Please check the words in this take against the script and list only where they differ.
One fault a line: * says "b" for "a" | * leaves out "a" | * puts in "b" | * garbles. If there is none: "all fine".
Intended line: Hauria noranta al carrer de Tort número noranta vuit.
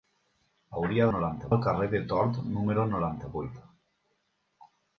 all fine